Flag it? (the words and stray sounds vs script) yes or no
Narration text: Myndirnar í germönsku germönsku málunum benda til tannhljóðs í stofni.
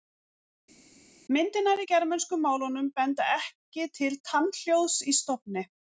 yes